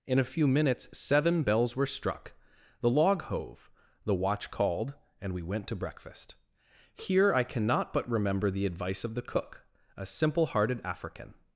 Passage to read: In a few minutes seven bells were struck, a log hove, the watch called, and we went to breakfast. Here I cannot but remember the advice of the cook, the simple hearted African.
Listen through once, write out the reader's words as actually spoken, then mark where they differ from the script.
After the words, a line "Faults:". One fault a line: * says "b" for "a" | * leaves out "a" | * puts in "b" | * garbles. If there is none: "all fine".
In a few minutes seven bells were struck, the log hove, the watch called, and we went to breakfast. Here I cannot but remember the advice of the cook, a simple hearted African.
Faults:
* says "the" for "a"
* says "a" for "the"